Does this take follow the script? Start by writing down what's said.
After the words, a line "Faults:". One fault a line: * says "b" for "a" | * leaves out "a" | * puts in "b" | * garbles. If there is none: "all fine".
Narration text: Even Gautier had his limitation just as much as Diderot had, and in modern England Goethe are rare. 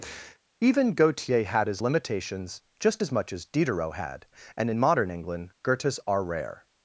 Even Gautier had his limitations just as much as Diderot had, and in modern England Goethes are rare.
Faults:
* says "limitations" for "limitation"
* says "Goethes" for "Goethe"